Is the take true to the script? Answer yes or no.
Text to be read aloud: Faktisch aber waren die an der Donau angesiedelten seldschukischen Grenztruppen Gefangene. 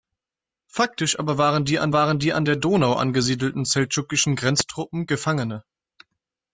no